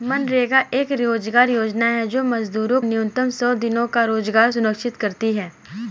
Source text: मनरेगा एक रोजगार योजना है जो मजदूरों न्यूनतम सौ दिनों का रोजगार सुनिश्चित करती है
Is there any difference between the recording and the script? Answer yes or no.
no